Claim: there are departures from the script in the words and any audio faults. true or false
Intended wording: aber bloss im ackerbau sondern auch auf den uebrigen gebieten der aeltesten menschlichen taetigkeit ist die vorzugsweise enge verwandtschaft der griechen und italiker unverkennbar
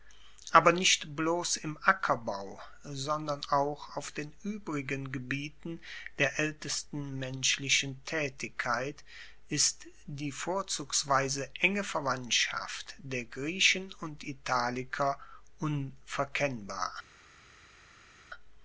true